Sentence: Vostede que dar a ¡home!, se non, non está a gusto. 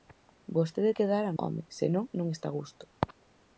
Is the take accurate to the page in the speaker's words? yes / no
yes